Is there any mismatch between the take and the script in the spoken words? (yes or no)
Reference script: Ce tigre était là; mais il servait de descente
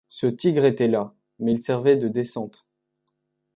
no